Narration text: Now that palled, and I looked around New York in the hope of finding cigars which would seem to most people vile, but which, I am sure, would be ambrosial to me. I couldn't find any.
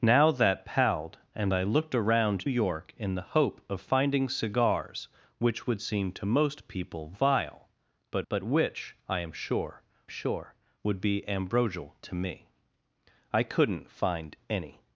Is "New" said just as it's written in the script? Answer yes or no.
no